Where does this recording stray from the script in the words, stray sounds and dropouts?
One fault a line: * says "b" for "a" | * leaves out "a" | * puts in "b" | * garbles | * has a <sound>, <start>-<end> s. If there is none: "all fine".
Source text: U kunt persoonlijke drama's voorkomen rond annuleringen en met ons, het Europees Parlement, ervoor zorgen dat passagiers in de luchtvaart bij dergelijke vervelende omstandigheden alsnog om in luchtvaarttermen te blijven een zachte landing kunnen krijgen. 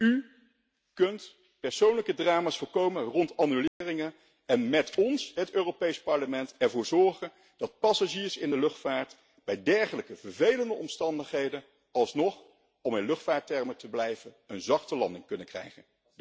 * has a dropout, 3.7-3.8 s